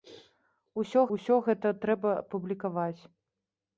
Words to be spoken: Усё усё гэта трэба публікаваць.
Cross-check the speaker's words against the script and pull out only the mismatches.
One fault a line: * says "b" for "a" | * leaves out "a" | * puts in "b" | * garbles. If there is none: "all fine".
all fine